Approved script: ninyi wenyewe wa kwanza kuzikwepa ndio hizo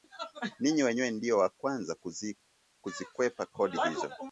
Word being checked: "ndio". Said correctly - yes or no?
no